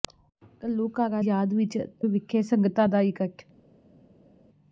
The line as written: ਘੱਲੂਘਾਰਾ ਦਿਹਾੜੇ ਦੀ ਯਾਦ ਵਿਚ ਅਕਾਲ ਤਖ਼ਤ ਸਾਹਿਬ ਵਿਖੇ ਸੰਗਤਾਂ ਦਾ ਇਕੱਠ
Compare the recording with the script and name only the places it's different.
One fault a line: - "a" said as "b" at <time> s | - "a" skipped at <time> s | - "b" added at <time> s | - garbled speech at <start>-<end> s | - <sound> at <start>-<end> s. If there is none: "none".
- "ਦਿਹਾੜੇ ਦੀ" skipped at 1.2 s
- "ਅਕਾਲ ਤਖ਼ਤ ਸਾਹਿਬ" skipped at 1.8 s